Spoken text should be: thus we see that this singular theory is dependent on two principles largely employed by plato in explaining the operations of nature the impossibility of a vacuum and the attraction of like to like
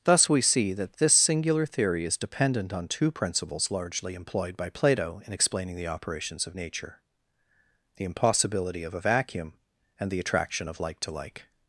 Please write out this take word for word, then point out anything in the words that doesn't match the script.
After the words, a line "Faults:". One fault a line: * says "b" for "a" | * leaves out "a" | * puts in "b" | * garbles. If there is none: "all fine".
thus we see that this singular theory is dependent on two principles largely employed by plato in explaining the operations of nature the impossibility of a vacuum and the attraction of like to like
Faults:
all fine